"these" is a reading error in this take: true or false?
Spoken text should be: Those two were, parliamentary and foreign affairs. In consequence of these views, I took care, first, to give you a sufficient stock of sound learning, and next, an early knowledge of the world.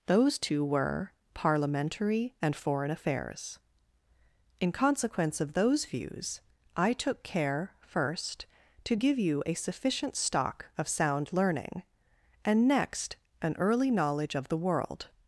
true